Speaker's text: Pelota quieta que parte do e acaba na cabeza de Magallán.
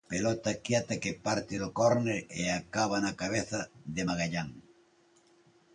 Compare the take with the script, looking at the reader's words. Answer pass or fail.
fail